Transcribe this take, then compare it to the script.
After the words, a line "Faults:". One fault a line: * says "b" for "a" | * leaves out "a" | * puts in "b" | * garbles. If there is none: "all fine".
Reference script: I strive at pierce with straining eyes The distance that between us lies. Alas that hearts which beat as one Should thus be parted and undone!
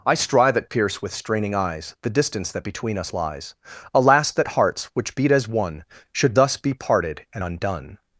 I strive at pierce with straining eyes The distance that between us lies. Alas that hearts which beat as one Should thus be parted and undone!
Faults:
all fine